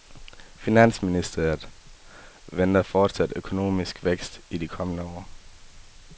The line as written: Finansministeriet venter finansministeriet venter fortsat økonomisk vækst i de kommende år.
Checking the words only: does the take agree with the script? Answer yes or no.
no